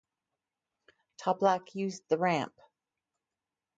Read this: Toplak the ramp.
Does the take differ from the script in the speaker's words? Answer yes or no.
yes